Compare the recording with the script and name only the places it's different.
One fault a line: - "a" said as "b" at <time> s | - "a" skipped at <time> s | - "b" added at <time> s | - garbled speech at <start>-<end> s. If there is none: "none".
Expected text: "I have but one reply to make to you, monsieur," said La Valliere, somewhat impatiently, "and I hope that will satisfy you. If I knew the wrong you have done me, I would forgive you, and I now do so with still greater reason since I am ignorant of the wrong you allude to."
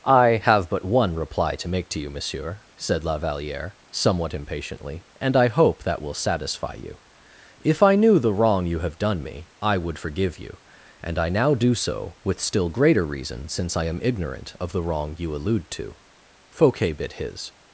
- "Fouquet bit his" added at 16.5 s